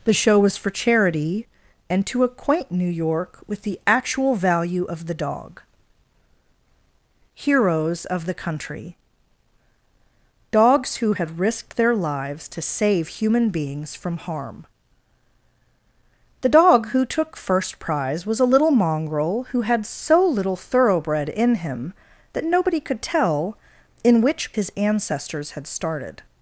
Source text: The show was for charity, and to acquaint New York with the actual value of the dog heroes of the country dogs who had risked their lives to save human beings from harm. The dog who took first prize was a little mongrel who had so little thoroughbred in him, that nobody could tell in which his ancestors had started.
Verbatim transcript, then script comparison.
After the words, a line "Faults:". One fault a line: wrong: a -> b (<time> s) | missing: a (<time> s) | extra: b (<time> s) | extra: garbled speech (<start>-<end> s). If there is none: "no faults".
The show was for charity, and to acquaint New York with the actual value of the dog heroes of the country dogs who had risked their lives to save human beings from harm. The dog who took first prize was a little mongrel who had so little thoroughbred in him, that nobody could tell in which his ancestors had started.
Faults:
no faults